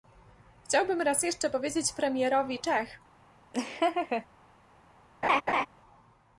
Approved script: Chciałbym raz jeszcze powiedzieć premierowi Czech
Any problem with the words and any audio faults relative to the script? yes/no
yes